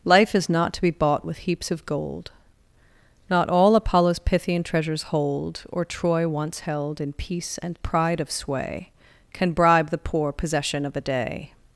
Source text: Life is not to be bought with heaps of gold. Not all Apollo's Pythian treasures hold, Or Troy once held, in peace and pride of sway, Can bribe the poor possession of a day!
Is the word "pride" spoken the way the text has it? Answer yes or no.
yes